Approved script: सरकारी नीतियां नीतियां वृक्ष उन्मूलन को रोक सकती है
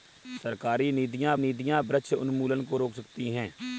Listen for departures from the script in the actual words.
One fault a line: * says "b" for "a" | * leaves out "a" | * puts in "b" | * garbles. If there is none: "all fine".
all fine